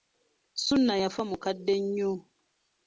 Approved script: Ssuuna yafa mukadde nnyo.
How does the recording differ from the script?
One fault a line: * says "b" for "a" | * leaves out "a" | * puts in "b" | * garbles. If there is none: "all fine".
all fine